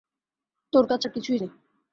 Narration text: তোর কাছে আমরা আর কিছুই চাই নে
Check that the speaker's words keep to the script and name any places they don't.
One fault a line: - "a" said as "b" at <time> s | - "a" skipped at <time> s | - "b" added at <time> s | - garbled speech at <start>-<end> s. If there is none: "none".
- "আমরা" skipped at 1.1 s
- "চাই" skipped at 1.4 s